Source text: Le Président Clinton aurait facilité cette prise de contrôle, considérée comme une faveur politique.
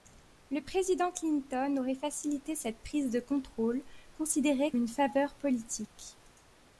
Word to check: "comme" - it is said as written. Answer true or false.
false